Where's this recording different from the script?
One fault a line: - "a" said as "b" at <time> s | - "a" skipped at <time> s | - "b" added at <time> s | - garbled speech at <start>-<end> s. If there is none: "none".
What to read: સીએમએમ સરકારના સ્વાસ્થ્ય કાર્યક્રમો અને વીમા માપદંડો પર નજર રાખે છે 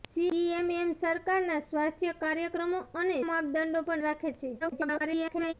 - "વીમા" skipped at 3.2 s
- "નજર" skipped at 4.0 s
- garbled speech at 4.6-5.5 s